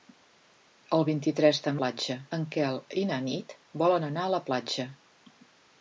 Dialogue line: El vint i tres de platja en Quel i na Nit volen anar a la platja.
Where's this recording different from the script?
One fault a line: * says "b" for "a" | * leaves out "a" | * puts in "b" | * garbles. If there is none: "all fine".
all fine